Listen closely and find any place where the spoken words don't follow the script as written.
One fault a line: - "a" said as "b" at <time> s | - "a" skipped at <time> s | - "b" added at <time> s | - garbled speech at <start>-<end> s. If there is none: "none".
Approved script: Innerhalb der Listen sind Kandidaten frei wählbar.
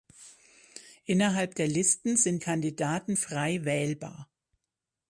none